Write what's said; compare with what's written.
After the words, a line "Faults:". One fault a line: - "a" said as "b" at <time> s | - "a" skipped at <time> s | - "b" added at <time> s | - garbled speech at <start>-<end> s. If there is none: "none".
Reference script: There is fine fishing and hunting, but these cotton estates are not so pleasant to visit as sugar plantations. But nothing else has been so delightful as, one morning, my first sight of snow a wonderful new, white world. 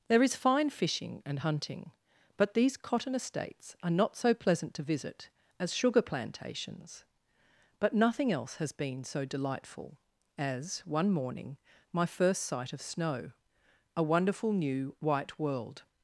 There is fine fishing and hunting, but these cotton estates are not so pleasant to visit as sugar plantations. But nothing else has been so delightful as, one morning, my first sight of snow a wonderful new, white world.
Faults:
none